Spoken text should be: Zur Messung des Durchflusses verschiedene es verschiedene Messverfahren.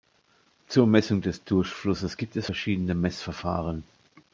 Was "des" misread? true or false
false